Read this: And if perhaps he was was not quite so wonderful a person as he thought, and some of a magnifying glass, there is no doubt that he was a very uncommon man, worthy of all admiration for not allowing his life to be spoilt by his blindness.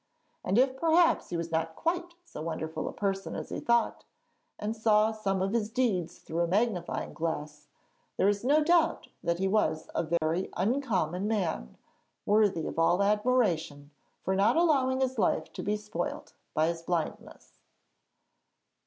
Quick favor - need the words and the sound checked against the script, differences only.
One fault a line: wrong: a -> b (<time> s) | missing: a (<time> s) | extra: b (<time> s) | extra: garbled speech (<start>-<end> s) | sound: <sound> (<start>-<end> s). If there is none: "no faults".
missing: was (1.5 s)
extra: saw (4.8 s)
extra: his deeds through (5.5 s)
sound: dropout (10.2-10.2 s)